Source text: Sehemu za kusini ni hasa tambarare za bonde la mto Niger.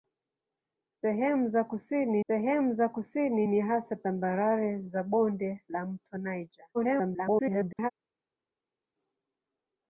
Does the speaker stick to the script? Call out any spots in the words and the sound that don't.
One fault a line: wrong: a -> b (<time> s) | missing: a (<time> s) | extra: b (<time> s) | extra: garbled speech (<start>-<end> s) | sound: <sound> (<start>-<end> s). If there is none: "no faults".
extra: sehemu za kusini (2.3 s)
extra: garbled speech (6.7-7.9 s)